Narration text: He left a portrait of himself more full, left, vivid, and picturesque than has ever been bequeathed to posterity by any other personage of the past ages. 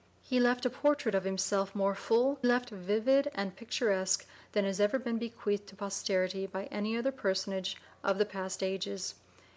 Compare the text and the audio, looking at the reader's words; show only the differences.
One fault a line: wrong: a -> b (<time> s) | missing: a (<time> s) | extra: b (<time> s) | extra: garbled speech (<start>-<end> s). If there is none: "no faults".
no faults